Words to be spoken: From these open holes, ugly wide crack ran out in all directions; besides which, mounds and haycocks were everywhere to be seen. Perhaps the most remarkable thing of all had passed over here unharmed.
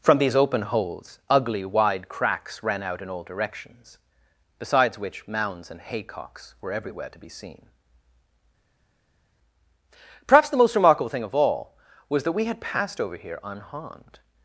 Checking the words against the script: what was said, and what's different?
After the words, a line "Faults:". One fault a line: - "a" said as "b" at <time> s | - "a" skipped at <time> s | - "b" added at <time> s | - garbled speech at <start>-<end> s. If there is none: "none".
From these open holes, ugly wide cracks ran out in all directions; besides which, mounds and haycocks were everywhere to be seen. Perhaps the most remarkable thing of all was that we had passed over here unharmed.
Faults:
- "crack" said as "cracks" at 2.1 s
- "was that we" added at 12.1 s